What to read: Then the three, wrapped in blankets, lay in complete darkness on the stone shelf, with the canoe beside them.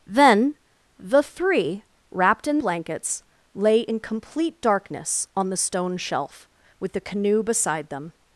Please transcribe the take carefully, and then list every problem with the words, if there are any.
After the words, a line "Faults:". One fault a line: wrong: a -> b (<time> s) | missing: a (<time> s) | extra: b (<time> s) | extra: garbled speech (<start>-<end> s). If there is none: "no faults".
Then the three, wrapped in blankets, lay in complete darkness on the stone shelf, with the canoe beside them.
Faults:
no faults